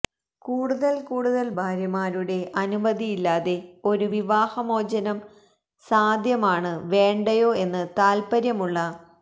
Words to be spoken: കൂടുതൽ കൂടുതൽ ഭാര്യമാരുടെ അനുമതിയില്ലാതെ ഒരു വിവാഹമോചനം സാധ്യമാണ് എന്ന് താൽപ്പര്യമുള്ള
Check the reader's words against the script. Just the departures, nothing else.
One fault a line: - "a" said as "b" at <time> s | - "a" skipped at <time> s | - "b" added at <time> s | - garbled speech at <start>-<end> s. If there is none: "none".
- "വേണ്ടയോ" added at 6.9 s